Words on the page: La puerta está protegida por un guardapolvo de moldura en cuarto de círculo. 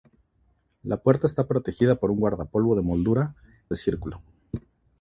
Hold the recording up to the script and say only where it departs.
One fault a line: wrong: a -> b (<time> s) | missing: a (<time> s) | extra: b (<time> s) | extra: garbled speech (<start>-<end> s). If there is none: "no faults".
missing: en cuarto (3.4 s)